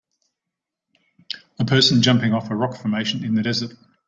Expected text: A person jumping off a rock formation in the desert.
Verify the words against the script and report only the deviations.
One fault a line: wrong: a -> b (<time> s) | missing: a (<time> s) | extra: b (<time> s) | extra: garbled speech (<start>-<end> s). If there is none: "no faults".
no faults